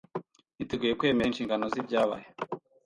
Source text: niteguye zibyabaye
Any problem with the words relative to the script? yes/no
yes